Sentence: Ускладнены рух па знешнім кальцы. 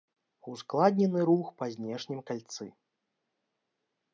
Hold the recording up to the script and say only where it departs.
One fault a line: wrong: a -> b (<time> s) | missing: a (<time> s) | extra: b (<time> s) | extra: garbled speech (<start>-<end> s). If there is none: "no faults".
no faults